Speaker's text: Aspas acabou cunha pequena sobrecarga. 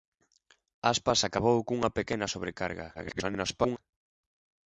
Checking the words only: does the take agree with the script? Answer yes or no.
no